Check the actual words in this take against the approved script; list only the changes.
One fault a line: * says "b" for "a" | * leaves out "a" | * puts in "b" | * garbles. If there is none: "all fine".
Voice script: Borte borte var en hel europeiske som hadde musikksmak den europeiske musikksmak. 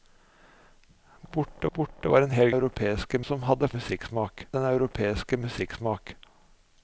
all fine